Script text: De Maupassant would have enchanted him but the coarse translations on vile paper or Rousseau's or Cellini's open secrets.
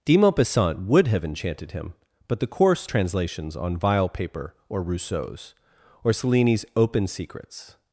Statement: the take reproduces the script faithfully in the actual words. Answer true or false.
true